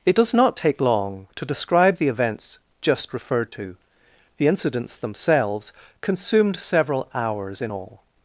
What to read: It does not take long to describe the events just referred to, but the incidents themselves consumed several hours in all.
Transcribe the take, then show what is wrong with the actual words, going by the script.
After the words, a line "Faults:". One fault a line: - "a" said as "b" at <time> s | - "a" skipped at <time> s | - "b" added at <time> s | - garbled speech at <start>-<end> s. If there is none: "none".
It does not take long to describe the events just referred to, the incidents themselves consumed several hours in all.
Faults:
- "but" skipped at 3.8 s